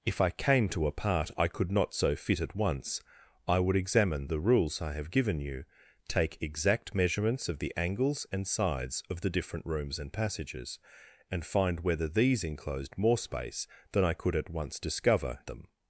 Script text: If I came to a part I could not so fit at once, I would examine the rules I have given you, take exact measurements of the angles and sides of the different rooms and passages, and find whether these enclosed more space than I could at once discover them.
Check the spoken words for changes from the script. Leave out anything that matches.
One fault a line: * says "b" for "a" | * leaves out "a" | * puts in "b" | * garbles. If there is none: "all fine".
all fine